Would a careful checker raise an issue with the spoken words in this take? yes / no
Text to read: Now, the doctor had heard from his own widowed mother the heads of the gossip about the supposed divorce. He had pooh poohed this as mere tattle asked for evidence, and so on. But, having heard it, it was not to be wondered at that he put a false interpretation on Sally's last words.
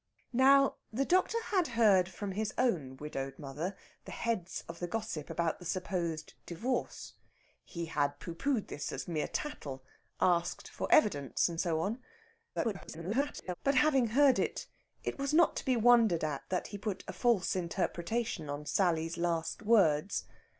yes